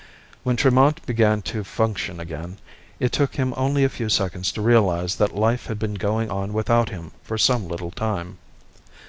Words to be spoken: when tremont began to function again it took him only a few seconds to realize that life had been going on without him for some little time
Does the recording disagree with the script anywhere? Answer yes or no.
no